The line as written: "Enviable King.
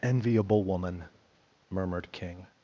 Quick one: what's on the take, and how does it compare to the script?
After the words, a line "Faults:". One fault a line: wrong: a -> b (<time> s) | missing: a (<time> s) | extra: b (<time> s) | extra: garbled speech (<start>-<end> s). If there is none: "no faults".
"Enviable woman!" murmured King.
Faults:
extra: woman murmured (0.6 s)